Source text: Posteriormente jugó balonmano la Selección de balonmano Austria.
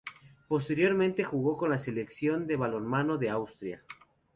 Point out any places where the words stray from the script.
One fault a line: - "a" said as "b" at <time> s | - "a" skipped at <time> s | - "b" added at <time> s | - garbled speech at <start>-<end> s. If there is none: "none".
- "balonmano" said as "con" at 1.6 s
- "de" added at 3.2 s